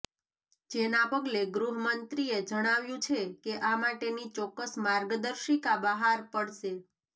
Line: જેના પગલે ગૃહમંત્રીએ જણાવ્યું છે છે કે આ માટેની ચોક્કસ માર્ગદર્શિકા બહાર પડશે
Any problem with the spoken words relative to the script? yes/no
yes